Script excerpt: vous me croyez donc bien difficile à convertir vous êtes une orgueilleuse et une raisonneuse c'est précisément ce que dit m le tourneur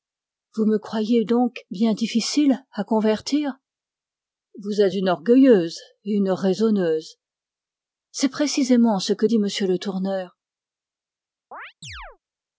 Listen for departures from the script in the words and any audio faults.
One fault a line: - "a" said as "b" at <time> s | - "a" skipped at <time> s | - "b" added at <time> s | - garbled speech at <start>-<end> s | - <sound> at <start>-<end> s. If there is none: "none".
- chirp at 11.5-12.2 s